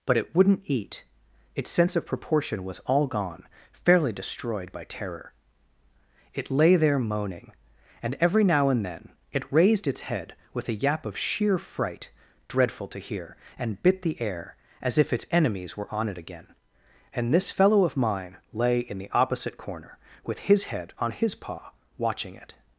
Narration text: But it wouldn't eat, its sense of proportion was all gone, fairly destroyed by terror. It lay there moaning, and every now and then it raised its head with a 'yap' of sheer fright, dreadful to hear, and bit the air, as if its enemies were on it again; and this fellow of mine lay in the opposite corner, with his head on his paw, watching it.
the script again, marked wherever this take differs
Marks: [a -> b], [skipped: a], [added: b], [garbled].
But it wouldn't eat, its sense of proportion was all gone, fairly destroyed by terror. It lay there moaning, and every now and then it raised its head with a 'yap' of sheer fright, dreadful to hear, and bit the air, as if its enemies were on it again; and this fellow of mine lay in the opposite corner, with his head on his paw, watching it.